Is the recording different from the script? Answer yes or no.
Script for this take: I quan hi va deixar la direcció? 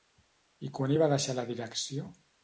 no